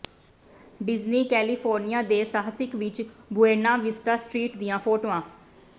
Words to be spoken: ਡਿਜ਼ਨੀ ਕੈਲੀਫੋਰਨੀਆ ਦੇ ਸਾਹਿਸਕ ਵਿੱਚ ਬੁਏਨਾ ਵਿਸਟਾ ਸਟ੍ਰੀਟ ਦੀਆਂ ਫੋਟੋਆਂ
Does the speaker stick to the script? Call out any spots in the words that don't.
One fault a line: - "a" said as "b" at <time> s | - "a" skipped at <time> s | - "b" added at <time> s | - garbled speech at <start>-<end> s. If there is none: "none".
none